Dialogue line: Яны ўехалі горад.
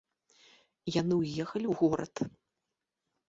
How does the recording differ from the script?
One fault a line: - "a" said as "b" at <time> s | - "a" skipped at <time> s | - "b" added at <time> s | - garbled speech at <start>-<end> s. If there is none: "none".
- "ў" added at 1.7 s